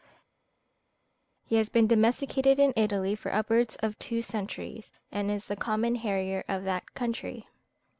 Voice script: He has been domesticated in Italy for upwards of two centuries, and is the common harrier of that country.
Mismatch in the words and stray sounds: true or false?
false